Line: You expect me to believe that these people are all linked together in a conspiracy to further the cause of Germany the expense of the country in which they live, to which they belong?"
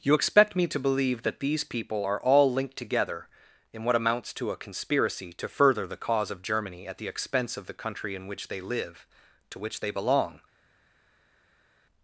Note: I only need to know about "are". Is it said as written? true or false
true